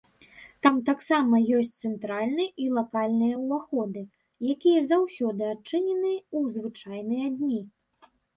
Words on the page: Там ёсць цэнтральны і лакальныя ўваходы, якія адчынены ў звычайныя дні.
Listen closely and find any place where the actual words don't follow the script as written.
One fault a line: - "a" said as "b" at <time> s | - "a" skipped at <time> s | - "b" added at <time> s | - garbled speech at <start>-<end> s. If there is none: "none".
- "таксама" added at 0.9 s
- "заўсёды" added at 4.9 s